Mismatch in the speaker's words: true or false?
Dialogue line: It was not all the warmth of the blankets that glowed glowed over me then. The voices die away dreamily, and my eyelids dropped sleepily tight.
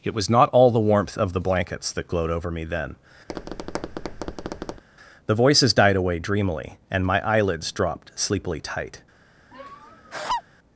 true